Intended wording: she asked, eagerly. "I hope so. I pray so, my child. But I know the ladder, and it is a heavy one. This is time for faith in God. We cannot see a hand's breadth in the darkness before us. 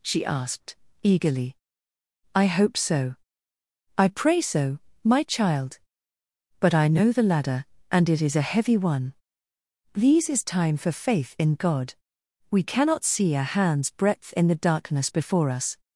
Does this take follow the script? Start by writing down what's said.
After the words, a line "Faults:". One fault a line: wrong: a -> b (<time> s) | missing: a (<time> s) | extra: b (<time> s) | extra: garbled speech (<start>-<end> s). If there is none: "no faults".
she asked, eagerly. "I hope so. I pray so, my child. But I know the ladder, and it is a heavy one. These is time for faith in God. We cannot see a hand's breadth in the darkness before us.
Faults:
wrong: This -> These (9.9 s)